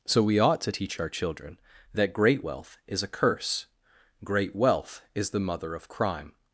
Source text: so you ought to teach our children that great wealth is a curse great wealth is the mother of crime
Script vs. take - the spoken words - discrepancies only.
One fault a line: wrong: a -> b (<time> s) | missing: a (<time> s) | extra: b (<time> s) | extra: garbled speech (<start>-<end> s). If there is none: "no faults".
wrong: you -> we (0.2 s)